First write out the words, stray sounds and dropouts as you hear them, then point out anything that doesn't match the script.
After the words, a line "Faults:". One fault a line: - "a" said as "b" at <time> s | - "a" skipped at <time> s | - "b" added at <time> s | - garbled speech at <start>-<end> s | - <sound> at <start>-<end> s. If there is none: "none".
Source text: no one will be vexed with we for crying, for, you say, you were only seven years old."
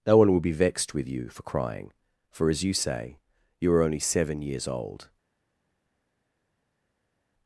no one will be vexed with you for crying, for, as you say, you are only seven years old."
Faults:
- "we" said as "you" at 1.1 s
- "as" added at 2.5 s
- "were" said as "are" at 3.7 s